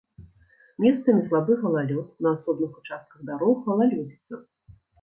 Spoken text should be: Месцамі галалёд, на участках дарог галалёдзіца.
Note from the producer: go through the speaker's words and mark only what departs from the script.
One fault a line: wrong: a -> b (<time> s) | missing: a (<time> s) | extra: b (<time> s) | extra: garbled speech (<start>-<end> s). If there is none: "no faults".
extra: слабы (1.3 s)
extra: асобных (2.4 s)